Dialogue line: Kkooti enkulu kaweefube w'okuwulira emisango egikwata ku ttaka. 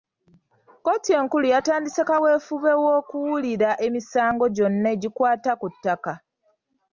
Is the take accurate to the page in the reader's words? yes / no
no